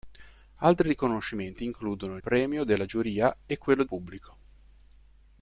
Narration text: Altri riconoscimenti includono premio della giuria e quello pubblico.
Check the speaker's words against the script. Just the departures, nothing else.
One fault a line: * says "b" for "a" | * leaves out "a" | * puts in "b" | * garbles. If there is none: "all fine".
all fine